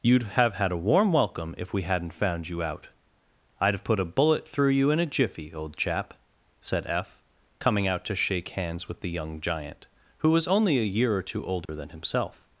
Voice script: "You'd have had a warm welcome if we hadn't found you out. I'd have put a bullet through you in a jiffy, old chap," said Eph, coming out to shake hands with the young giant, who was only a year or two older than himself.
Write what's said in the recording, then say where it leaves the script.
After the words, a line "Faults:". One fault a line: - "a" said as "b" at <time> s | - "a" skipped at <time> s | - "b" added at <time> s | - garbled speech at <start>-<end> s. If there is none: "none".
"You'd have had a warm welcome if we hadn't found you out. I'd have put a bullet through you in a jiffy, old chap," said Eph, coming out to shake hands with the young giant, who was only a year or two older than himself.
Faults:
none